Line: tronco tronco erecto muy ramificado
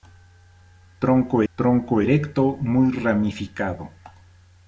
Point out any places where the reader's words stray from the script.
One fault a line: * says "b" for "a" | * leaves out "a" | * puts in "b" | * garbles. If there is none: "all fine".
all fine